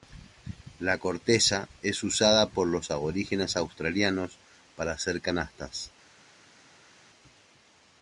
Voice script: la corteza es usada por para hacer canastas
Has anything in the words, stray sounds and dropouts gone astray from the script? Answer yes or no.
yes